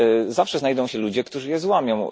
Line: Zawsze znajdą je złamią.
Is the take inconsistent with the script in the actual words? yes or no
yes